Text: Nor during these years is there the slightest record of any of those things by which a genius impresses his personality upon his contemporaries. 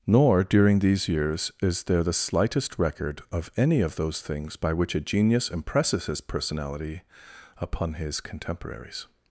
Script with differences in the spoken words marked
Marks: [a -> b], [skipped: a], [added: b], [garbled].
Nor during these years is there the slightest record of any of those things by which a genius impresses his personality upon his contemporaries.